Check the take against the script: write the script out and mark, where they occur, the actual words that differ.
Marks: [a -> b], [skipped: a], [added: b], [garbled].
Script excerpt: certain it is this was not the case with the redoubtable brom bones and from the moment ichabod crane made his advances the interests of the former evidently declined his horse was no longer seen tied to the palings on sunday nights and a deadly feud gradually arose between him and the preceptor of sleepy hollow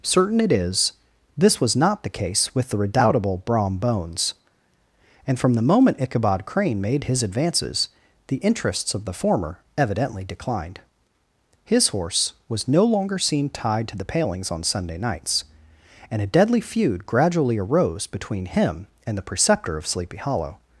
certain it is this was not the case with the redoubtable brom bones and from the moment ichabod crane made his advances the interests of the former evidently declined his horse was no longer seen tied to the palings on sunday nights and a deadly feud gradually arose between him and the preceptor of sleepy hollow